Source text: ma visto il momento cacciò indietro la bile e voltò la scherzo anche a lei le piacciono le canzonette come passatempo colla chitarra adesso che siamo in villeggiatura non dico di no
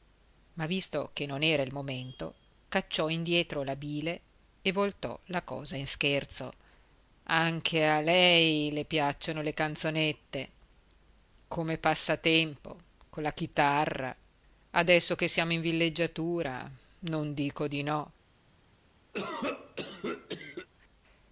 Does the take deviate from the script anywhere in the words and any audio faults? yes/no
yes